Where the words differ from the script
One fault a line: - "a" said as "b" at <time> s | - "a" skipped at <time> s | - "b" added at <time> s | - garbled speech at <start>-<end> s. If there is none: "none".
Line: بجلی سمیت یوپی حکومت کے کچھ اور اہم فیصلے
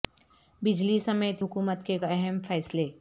- "یوپی" skipped at 1.4 s
- "کچھ اور" skipped at 2.0 s